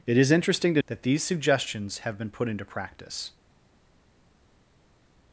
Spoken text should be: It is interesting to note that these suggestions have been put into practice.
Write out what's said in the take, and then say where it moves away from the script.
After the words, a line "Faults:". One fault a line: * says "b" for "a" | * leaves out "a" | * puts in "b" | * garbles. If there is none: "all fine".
It is interesting to that these suggestions have been put into practice.
Faults:
* leaves out "note"